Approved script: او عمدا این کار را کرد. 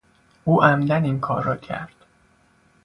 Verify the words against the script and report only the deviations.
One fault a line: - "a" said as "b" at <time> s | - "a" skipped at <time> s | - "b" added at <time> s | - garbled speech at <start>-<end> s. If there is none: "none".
none